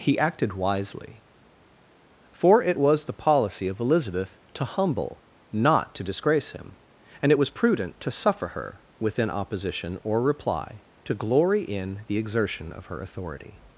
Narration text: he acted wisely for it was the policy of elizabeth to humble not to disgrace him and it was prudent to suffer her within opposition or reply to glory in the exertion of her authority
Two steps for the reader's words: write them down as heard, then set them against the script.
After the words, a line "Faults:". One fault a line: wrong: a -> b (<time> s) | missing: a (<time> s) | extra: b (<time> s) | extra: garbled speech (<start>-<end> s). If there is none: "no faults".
he acted wisely for it was the policy of elizabeth to humble not to disgrace him and it was prudent to suffer her within opposition or reply to glory in the exertion of her authority
Faults:
no faults